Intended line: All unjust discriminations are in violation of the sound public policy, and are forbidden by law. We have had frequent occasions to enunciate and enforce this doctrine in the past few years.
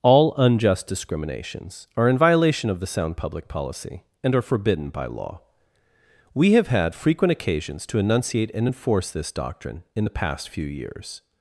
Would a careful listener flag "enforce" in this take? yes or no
no